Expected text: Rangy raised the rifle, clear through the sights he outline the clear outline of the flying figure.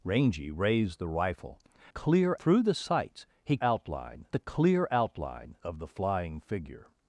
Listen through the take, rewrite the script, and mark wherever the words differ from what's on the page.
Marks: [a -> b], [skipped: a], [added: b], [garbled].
Rangy raised the rifle, clear through the sights he outline the clear outline of the flying figure.